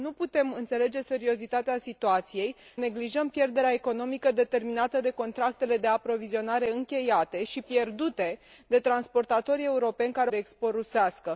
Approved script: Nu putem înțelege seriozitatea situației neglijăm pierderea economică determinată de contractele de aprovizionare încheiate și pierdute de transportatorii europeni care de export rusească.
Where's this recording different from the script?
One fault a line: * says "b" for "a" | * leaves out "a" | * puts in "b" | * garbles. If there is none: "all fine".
all fine